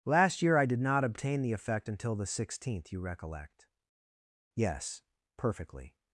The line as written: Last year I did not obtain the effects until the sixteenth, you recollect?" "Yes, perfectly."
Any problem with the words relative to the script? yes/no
yes